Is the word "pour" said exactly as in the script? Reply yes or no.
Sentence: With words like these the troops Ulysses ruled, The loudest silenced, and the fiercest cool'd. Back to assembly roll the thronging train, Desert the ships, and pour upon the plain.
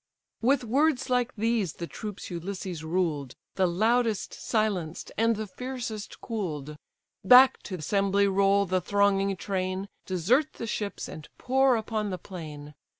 yes